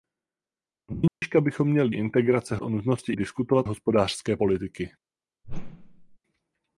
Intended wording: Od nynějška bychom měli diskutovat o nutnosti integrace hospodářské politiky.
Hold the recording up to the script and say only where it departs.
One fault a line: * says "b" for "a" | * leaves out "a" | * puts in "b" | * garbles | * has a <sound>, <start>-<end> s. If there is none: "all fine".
* has a dropout, 1.1-1.2 s
* says "integrace" for "diskutovat"
* says "diskutovat" for "integrace"
* has a whoosh, 5.4-6.2 s